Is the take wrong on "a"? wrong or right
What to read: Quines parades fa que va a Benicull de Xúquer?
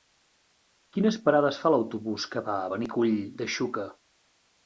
right